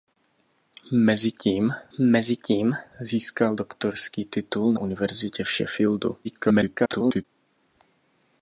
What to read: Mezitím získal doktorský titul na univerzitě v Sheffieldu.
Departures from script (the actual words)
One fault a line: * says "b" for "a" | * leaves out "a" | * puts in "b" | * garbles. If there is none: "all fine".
* puts in "mezitím"
* leaves out "na"
* garbles